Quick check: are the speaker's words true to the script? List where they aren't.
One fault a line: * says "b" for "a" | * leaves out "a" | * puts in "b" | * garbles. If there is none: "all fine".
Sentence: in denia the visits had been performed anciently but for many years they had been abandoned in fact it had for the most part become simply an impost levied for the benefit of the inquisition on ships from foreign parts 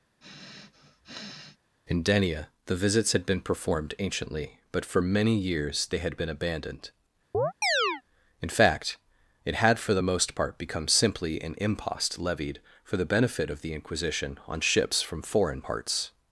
all fine